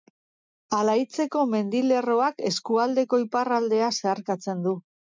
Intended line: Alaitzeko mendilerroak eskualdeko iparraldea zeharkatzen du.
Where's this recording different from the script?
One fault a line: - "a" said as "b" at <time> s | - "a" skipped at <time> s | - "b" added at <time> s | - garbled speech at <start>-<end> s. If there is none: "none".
none